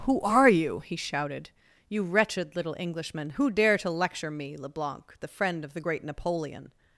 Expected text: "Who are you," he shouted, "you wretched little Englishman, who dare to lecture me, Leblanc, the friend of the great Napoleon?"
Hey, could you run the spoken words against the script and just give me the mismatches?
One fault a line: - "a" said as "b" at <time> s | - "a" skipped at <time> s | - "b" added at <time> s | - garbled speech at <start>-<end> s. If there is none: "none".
none